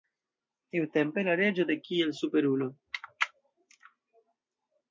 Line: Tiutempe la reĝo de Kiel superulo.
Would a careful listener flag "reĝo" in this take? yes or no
no